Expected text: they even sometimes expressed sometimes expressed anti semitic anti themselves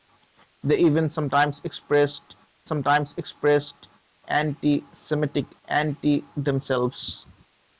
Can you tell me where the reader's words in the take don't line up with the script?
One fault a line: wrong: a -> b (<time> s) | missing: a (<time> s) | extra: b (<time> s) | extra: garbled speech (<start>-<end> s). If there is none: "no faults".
no faults